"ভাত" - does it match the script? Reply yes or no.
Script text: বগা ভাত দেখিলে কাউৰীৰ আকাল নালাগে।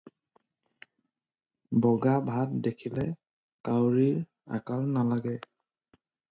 yes